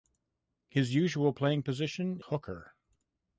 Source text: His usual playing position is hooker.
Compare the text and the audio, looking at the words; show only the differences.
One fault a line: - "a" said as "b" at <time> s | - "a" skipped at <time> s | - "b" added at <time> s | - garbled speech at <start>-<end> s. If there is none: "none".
- "is" skipped at 2.2 s